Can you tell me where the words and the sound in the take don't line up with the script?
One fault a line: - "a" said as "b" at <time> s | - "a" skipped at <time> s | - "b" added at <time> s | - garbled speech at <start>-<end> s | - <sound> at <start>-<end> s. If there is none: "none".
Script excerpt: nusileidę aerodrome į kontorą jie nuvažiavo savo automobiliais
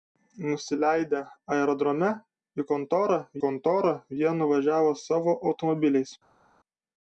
- "kontorą" added at 3.4 s